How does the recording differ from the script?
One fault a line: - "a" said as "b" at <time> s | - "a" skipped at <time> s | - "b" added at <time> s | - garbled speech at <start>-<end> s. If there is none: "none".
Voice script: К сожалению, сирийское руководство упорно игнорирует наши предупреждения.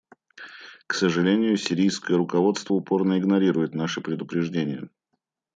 none